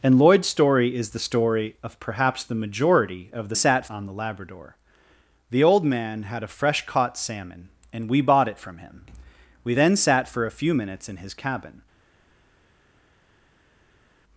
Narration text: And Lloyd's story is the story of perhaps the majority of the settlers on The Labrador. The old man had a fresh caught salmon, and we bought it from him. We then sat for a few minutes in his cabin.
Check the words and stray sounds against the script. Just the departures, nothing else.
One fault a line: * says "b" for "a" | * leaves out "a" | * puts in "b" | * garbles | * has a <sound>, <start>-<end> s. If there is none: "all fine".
* says "sat" for "settlers"